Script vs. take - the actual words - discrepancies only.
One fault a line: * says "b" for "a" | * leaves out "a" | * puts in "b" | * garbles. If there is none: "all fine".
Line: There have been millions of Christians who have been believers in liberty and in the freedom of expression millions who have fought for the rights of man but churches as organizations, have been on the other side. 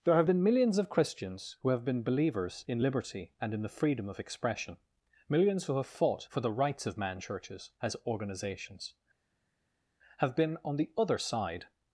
* leaves out "but"